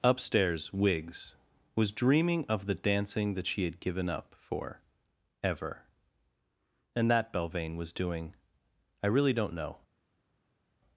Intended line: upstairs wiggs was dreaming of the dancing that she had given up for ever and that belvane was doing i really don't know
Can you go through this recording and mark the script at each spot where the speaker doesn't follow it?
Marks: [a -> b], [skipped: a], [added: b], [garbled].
upstairs wiggs was dreaming of the dancing that she had given up for ever and that belvane was doing i really don't know